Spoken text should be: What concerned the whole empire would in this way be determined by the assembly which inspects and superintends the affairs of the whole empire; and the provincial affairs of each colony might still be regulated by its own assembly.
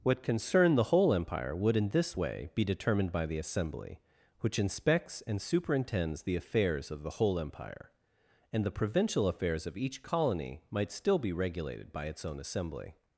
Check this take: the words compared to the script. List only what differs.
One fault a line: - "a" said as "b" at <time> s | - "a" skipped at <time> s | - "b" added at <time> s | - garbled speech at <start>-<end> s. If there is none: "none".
none